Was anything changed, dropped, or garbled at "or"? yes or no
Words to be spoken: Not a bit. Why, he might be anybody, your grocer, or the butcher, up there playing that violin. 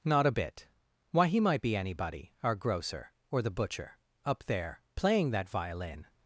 no